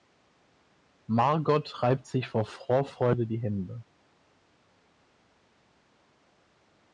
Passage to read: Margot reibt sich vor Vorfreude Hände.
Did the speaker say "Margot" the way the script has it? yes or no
yes